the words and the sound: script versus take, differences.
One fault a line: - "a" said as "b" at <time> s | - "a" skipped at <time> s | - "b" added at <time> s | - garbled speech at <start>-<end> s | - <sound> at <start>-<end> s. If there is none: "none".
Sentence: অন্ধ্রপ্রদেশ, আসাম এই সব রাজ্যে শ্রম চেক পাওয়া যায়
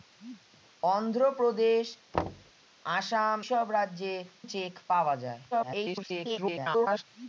- thud at 2.1-2.5 s
- "এই" skipped at 3.4 s
- "শ্রম" skipped at 4.1 s
- garbled speech at 5.5-7.0 s